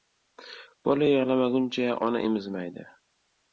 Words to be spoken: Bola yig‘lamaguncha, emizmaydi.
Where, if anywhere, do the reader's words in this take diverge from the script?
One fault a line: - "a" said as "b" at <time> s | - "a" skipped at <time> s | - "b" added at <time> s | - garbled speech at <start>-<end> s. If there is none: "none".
- "ona" added at 2.1 s